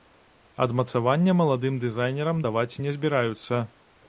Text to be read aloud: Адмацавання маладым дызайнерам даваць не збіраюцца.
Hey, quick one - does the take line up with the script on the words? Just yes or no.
yes